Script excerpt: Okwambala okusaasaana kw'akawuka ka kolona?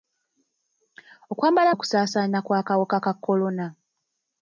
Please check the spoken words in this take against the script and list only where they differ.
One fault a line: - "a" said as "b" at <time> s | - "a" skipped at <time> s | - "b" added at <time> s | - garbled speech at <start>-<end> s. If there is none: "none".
none